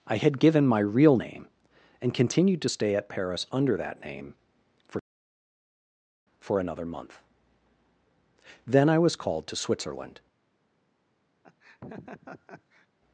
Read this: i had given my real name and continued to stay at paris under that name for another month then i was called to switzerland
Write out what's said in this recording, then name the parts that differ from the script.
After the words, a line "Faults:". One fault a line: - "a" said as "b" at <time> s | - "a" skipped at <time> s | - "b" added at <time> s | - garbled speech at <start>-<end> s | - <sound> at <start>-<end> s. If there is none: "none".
i had given my real name and continued to stay at paris under that name for for another month then i was called to switzerland
Faults:
- "for" added at 6.4 s
- laugh at 11.4-12.9 s